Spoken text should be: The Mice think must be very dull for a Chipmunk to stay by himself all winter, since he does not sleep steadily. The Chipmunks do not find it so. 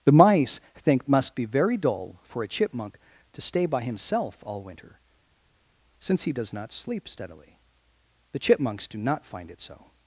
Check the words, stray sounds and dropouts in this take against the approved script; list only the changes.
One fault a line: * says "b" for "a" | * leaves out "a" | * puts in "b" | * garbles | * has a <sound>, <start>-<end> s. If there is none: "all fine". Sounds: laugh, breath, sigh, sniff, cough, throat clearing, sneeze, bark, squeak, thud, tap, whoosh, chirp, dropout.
all fine